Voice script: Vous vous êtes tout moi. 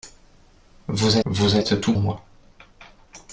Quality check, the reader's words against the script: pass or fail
pass